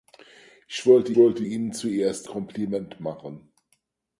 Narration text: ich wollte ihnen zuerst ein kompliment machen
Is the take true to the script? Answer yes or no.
no